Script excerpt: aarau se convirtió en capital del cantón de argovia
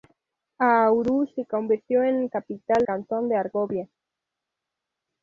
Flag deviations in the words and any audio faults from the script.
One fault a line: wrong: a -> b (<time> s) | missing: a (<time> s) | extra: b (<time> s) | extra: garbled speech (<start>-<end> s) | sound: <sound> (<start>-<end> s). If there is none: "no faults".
missing: del (2.9 s)